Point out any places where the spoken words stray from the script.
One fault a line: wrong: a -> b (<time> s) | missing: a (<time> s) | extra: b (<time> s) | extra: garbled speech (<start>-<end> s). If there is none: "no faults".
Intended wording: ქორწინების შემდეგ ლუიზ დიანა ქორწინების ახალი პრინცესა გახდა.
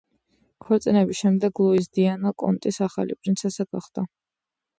wrong: ქორწინების -> კონტის (2.5 s)